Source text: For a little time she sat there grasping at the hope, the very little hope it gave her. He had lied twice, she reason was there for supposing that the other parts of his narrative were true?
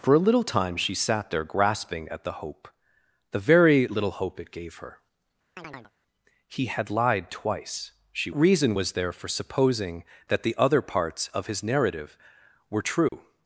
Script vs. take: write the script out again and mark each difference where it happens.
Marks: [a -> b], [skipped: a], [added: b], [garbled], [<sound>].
For a little time she sat there grasping at the hope, the very little hope it gave her. [chirp] He had lied twice, she reason was there for supposing that the other parts of his narrative were true? [dropout]